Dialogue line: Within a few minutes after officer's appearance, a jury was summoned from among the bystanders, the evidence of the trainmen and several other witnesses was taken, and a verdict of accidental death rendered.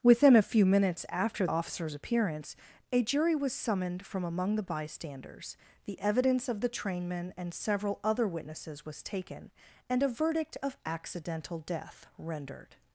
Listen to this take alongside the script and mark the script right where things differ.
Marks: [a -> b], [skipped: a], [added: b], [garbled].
Within a few minutes after officer's appearance, a jury was summoned from among the bystanders, the evidence of the trainmen and several other witnesses was taken, and a verdict of accidental death rendered.